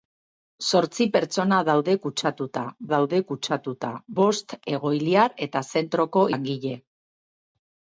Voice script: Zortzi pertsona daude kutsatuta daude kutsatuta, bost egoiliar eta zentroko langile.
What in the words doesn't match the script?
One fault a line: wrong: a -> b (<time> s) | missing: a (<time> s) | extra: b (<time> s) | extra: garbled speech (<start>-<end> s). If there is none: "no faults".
no faults